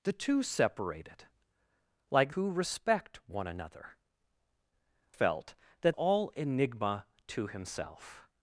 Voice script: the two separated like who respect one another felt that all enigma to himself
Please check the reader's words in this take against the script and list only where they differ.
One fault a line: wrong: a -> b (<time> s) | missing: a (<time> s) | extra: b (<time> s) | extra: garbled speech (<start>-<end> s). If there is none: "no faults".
no faults